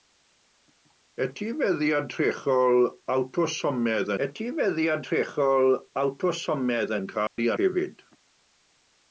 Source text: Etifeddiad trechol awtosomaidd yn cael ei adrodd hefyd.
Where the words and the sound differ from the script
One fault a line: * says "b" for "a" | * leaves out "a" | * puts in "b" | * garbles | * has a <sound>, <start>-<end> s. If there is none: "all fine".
* puts in "etifeddiad trechol awtosomaidd"
* has a dropout, 7.3-7.4 s
* leaves out "adrodd"